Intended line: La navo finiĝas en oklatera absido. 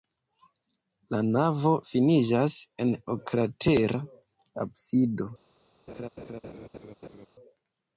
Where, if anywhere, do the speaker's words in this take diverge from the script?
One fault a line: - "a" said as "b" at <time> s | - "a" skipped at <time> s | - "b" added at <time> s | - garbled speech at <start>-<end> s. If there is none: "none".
none